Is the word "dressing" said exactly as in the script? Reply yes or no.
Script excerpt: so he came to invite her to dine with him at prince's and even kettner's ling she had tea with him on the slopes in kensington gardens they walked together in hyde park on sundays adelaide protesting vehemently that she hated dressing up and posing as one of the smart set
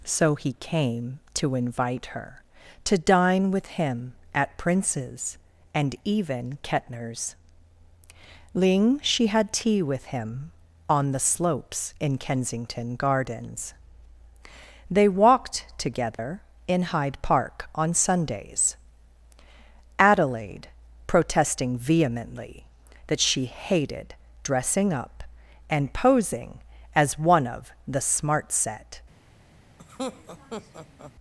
yes